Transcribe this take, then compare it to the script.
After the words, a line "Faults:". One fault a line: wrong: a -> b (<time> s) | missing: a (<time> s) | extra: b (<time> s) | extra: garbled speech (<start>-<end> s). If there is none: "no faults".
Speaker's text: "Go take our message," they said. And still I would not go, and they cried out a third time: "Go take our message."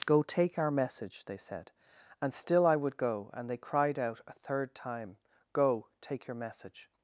"Go take our message," they said. And still I would go, and they cried out a third time: "Go take your message."
Faults:
missing: not (3.0 s)
wrong: our -> your (6.3 s)